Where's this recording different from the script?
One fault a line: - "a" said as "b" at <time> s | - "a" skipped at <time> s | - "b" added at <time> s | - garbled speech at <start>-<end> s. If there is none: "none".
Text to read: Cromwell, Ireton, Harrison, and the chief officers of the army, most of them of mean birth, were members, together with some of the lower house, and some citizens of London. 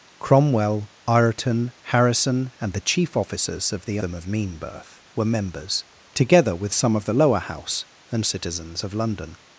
- "army most of" skipped at 4.0 s
- "some" skipped at 8.2 s